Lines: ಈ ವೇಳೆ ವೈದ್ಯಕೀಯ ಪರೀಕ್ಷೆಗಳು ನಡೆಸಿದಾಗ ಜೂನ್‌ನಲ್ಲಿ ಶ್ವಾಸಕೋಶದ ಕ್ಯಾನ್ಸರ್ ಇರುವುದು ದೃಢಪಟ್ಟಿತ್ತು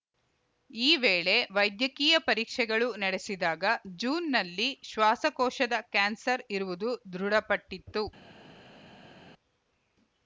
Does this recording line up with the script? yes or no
yes